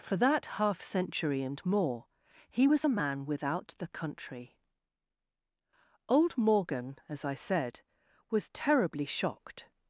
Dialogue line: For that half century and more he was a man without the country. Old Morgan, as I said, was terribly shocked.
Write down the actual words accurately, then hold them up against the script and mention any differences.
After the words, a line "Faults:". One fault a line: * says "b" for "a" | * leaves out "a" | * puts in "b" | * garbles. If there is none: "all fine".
For that half century and more he was a man without the country. Old Morgan, as I said, was terribly shocked.
Faults:
all fine